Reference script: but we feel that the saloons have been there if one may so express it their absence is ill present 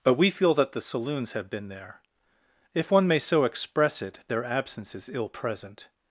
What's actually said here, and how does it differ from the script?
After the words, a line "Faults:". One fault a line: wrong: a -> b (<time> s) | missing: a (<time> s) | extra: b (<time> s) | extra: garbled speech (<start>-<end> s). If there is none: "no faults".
but we feel that the saloons have been there if one may so express it their absence is ill present
Faults:
no faults